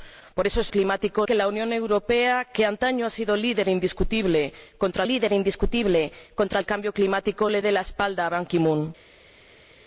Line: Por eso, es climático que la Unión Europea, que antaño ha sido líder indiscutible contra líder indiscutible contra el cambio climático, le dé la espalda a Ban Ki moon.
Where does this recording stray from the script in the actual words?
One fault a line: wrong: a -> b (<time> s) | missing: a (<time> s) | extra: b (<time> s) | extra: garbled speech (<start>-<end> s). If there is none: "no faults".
no faults